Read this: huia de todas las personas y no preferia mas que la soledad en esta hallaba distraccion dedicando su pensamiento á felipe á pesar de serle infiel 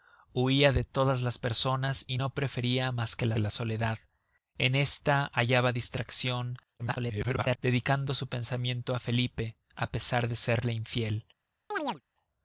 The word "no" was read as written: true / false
true